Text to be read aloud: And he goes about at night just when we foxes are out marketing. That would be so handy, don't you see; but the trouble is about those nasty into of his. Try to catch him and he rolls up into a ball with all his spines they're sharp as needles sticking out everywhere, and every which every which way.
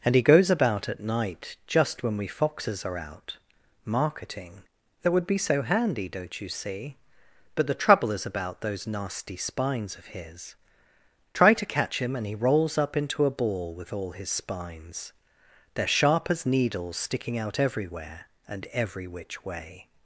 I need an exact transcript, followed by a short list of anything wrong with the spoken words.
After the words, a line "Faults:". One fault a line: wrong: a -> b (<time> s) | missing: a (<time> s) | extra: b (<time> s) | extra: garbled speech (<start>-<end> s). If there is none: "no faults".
And he goes about at night just when we foxes are out marketing. That would be so handy, don't you see; but the trouble is about those nasty spines of his. Try to catch him and he rolls up into a ball with all his spines they're sharp as needles sticking out everywhere, and every which way.
Faults:
wrong: into -> spines (9.4 s)
missing: every which (19.4 s)